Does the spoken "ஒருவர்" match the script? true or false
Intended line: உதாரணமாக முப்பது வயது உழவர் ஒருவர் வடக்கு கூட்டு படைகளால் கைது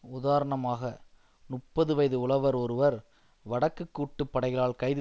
true